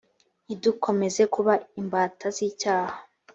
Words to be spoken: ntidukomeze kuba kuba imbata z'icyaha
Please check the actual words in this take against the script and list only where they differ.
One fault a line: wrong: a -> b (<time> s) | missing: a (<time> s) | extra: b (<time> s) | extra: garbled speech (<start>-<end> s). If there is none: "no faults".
missing: kuba (1.5 s)